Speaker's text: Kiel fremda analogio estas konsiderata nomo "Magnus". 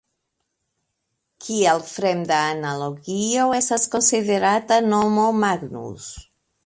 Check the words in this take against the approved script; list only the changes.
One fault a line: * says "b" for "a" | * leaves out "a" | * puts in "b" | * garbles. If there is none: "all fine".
all fine